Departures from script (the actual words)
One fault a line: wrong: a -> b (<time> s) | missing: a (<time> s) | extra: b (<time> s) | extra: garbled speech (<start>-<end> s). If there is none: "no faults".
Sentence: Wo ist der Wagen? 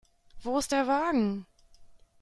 no faults